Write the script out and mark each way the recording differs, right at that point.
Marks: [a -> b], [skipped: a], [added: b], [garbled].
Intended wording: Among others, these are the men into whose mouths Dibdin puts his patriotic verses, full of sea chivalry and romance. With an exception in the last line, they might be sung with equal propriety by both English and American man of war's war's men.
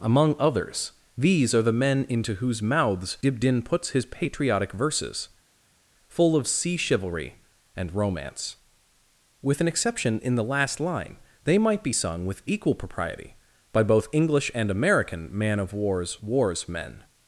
Among others, these are the men into whose mouths Dibdin puts his patriotic verses, full of sea chivalry and romance. With an exception in the last line, they might be sung with equal propriety by both English and American man of war's war's men.